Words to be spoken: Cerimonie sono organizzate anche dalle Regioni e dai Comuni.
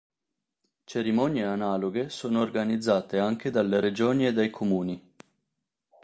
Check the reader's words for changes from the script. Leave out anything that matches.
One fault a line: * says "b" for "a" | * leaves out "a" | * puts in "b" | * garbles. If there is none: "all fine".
* puts in "analoghe"